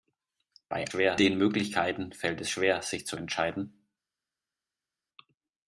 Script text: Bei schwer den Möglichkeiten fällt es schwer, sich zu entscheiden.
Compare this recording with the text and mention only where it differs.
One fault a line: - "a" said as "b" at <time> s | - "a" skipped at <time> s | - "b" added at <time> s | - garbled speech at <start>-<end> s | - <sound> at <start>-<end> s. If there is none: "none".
none